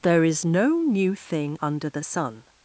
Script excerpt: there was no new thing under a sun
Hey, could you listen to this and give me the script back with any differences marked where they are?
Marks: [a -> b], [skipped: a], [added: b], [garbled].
there [was -> is] no new thing under [a -> the] sun